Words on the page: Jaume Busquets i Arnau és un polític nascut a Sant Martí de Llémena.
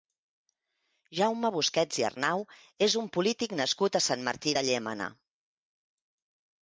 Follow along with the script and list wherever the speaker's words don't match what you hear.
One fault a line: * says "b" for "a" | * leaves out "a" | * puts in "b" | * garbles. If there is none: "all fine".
all fine